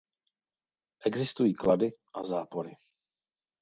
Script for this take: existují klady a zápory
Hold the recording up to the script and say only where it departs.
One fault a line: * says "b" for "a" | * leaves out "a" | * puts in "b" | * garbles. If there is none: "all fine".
all fine